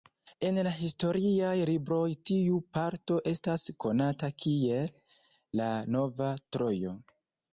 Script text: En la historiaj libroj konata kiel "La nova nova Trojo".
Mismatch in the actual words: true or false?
true